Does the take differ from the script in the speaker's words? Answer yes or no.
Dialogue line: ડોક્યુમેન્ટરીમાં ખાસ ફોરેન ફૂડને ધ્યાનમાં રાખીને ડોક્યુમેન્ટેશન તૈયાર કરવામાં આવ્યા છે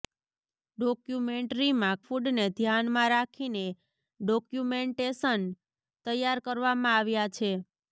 yes